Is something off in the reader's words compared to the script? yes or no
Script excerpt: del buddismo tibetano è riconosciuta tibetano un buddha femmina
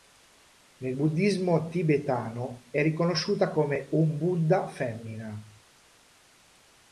yes